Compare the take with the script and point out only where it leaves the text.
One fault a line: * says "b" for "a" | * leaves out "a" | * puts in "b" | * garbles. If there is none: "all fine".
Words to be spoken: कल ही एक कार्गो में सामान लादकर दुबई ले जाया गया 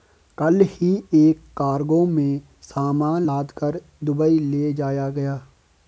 all fine